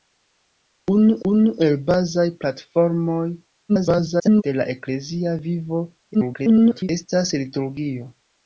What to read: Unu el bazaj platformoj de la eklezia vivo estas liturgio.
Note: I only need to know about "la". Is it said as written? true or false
true